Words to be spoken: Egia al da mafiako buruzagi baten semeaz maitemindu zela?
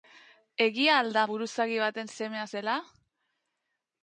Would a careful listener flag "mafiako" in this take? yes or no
yes